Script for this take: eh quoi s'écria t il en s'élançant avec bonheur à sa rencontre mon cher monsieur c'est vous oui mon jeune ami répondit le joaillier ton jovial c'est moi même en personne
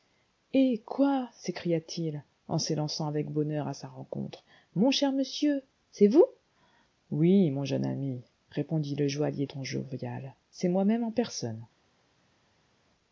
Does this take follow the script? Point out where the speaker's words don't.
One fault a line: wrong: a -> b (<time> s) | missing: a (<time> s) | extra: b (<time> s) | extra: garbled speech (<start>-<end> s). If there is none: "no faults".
no faults